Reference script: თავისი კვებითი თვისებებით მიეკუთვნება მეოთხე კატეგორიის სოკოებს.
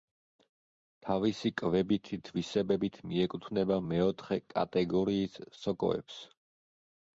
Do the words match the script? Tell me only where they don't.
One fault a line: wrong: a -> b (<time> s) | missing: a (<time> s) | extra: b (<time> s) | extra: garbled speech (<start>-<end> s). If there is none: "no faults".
no faults